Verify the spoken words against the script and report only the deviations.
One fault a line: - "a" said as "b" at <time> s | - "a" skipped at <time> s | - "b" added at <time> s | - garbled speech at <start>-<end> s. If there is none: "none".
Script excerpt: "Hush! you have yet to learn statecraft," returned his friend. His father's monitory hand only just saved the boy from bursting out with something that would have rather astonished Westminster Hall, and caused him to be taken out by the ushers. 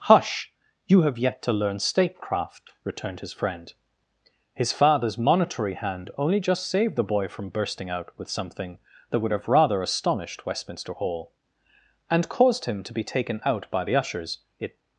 - "It" added at 14.6 s